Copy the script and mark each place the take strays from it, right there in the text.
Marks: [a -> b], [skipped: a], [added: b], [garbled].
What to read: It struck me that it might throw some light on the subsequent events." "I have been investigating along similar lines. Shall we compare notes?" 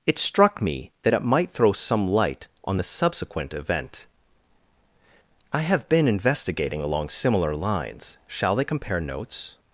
It struck me that it might throw some light on the subsequent [events." -> event] "I have been investigating along similar lines. Shall [we -> they] compare notes?"